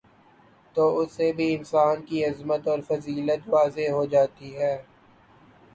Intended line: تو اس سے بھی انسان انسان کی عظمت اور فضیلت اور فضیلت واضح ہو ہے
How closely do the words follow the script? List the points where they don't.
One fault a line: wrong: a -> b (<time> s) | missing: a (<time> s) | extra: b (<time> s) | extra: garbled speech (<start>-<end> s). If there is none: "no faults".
missing: انسان (2.0 s)
missing: اور فضیلت (3.5 s)
extra: جاتی (4.0 s)